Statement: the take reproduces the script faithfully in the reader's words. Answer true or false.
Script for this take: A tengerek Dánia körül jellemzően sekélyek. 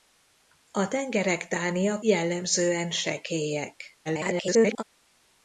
false